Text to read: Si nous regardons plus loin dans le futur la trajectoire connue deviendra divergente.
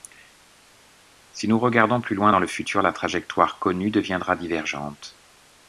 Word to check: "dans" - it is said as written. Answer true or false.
true